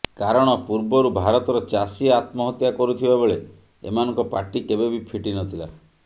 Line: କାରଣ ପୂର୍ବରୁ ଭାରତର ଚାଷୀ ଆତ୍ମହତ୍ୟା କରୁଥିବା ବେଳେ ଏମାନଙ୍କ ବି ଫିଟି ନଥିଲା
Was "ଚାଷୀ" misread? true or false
false